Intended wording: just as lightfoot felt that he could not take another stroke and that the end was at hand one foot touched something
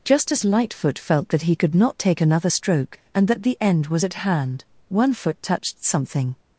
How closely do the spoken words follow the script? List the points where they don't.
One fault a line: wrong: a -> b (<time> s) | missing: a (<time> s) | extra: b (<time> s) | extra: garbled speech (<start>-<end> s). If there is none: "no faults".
no faults